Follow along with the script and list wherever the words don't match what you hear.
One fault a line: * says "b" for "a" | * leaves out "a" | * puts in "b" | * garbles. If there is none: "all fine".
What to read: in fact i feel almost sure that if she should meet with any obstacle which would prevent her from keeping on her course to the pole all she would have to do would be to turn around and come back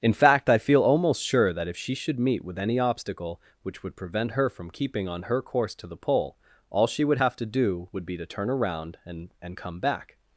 * puts in "and"